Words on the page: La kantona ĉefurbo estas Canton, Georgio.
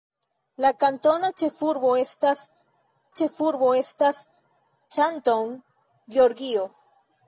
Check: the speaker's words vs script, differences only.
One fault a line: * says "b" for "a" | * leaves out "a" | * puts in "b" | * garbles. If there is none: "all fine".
* puts in "ĉefurbo estas"